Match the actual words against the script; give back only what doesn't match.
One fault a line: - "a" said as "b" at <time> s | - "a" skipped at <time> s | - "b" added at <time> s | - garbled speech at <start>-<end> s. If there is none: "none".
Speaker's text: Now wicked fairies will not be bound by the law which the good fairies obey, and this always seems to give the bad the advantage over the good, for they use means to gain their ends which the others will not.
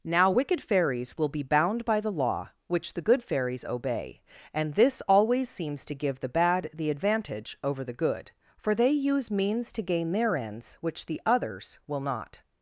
- "not" skipped at 1.3 s